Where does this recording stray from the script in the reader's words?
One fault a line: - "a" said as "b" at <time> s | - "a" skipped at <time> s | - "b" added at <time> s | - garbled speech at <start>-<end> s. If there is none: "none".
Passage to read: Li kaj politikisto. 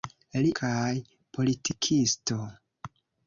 none